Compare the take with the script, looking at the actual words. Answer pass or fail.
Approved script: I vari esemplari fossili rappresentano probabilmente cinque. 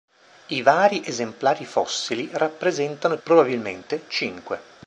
pass